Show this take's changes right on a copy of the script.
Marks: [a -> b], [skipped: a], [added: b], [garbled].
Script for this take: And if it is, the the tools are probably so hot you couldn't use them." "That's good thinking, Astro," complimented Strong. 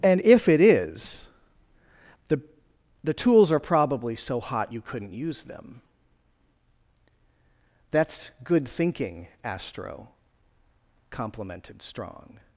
And if it is, the the tools are probably so hot you couldn't use them." "That's good thinking, Astro," complimented Strong.